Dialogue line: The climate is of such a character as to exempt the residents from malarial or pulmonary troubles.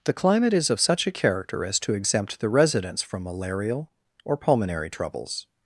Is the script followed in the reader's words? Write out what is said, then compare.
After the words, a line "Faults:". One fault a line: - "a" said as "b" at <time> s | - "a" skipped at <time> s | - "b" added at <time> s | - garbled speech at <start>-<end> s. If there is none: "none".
The climate is of such a character as to exempt the residents from malarial or pulmonary troubles.
Faults:
none